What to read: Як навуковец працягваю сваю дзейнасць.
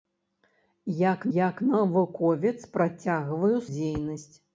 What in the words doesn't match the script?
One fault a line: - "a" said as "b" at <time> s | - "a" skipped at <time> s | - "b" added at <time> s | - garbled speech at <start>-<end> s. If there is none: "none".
- "як" added at 1.4 s
- "сваю" skipped at 3.6 s